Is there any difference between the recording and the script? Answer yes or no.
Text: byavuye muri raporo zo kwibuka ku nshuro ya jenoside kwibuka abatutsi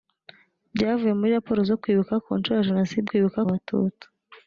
no